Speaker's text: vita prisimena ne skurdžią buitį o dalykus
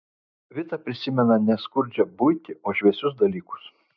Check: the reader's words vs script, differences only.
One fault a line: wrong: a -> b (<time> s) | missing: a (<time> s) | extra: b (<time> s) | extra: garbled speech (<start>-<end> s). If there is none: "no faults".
extra: šviesius (2.8 s)